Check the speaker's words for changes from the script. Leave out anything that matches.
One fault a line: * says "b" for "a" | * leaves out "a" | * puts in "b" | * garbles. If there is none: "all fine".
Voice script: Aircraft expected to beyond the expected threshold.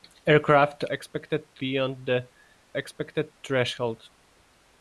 all fine